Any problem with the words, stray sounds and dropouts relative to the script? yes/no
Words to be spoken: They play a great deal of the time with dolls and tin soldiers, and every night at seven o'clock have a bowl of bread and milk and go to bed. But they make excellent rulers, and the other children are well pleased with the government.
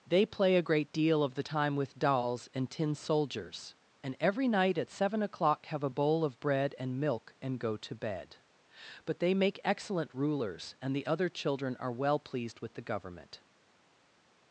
no